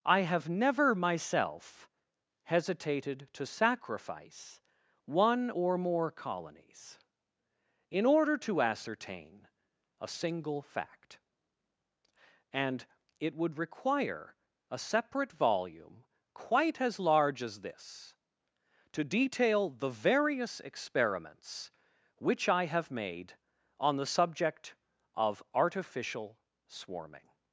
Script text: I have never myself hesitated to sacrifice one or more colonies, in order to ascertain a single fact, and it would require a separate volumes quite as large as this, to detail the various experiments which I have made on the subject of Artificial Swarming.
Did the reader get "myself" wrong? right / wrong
right